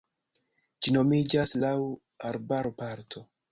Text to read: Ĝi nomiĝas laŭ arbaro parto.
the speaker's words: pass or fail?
pass